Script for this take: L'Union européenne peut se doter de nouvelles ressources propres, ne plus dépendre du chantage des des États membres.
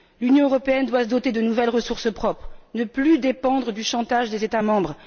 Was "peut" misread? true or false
true